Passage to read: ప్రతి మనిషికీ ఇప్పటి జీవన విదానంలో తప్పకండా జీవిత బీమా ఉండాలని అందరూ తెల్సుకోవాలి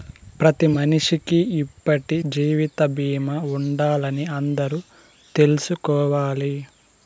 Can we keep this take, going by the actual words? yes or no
no